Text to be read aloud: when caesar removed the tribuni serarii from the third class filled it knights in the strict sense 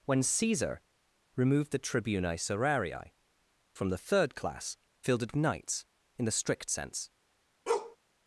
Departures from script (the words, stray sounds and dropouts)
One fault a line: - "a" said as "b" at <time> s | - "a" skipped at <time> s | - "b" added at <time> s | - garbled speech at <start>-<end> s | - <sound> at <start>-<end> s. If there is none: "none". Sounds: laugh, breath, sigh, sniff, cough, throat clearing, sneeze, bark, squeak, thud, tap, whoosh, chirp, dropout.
- bark at 7.7-8.0 s